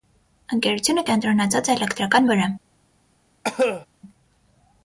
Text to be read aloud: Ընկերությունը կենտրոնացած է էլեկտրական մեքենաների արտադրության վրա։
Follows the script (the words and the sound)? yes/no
no